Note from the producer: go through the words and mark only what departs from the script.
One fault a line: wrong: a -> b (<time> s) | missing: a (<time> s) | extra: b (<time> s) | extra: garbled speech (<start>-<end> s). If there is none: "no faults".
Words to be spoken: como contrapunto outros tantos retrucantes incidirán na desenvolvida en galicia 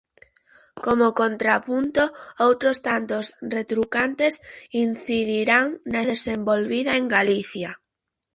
no faults